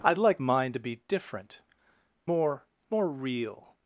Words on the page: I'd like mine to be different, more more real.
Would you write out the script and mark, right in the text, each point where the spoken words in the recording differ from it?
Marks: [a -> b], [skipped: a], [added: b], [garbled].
I'd like mine to be different, more more real.